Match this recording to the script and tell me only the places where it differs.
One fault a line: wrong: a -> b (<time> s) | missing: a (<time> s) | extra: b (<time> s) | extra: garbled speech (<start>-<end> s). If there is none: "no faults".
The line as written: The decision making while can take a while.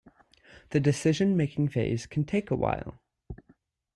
wrong: while -> phase (1.7 s)